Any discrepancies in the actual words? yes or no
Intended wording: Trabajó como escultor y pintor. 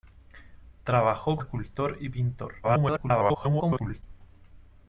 yes